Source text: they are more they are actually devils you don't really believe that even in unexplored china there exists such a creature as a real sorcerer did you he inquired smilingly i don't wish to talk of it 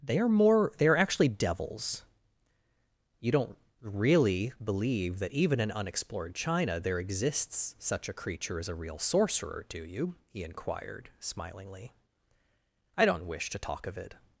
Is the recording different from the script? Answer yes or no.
yes